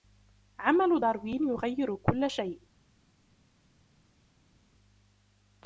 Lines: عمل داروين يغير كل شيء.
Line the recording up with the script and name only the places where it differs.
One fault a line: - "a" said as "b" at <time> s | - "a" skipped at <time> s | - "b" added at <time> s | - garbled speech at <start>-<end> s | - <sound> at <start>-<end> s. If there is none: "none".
none